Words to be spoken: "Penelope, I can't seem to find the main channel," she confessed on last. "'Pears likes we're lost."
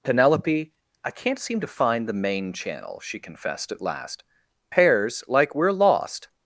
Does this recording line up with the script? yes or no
no